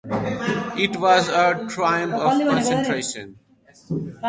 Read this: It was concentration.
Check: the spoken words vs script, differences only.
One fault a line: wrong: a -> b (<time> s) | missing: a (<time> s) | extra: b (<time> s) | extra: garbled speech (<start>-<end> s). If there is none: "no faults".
extra: a triumph of (1.3 s)